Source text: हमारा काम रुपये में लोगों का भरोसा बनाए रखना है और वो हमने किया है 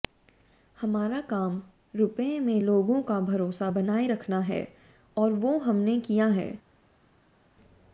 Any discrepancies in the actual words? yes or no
no